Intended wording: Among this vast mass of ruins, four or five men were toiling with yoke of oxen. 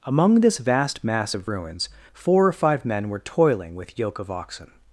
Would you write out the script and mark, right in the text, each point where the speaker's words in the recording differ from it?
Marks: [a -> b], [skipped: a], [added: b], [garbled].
Among this vast mass of ruins, four or five men were toiling with yoke of oxen.